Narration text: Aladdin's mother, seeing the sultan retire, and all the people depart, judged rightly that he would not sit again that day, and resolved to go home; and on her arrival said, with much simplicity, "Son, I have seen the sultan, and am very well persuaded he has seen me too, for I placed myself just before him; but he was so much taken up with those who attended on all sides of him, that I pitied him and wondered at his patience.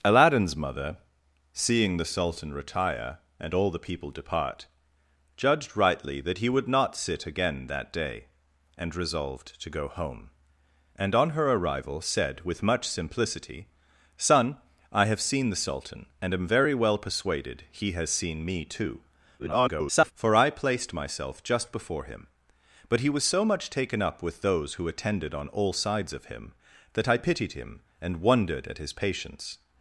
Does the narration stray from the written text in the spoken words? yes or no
yes